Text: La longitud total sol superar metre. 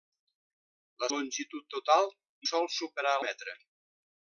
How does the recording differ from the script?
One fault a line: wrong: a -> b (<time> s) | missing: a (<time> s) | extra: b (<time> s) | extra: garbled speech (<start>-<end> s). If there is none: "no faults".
no faults